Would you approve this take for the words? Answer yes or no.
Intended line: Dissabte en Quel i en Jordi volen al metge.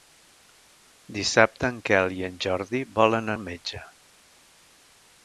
yes